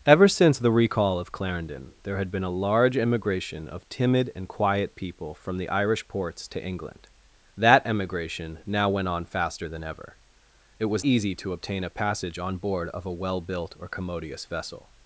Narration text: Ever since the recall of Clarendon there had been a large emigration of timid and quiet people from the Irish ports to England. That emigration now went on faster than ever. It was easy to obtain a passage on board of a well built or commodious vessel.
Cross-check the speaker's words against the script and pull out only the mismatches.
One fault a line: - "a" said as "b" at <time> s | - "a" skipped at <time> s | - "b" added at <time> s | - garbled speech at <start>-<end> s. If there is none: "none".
none